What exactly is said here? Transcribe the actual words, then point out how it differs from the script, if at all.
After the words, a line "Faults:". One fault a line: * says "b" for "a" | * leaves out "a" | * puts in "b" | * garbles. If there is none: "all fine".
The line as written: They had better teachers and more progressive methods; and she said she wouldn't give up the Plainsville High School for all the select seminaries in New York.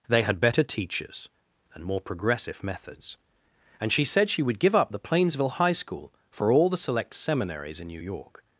They had better teachers and more progressive methods; and she said she would give up the Plainsville High School for all the select seminaries in New York.
Faults:
* says "would" for "wouldn't"